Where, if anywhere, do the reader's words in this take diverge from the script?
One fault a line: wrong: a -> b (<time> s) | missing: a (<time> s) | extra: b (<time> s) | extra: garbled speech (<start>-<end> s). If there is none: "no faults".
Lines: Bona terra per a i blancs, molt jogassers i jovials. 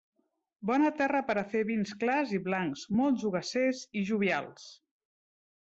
extra: fer vins clars (1.5 s)